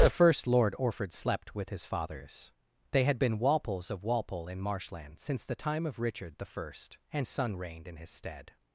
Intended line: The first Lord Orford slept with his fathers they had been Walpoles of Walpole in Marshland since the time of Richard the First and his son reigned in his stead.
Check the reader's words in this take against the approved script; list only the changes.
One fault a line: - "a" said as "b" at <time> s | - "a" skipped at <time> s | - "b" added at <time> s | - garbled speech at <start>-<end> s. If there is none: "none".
- "his" skipped at 7.3 s